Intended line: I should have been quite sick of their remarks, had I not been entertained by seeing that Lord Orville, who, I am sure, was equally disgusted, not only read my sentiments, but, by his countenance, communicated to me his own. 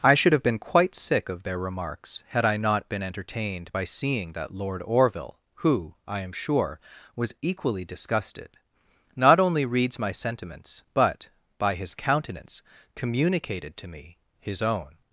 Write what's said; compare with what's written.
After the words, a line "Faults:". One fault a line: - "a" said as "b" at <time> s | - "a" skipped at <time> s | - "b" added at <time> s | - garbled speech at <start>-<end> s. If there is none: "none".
I should have been quite sick of their remarks, had I not been entertained by seeing that Lord Orville, who, I am sure, was equally disgusted, not only reads my sentiments, but, by his countenance, communicated to me his own.
Faults:
- "read" said as "reads" at 9.7 s